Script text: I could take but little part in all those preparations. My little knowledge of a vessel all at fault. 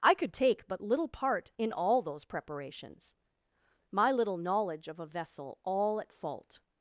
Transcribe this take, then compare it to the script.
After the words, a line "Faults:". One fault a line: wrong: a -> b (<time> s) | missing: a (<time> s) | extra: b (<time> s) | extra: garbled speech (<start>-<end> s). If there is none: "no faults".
I could take but little part in all those preparations. My little knowledge of a vessel all at fault.
Faults:
no faults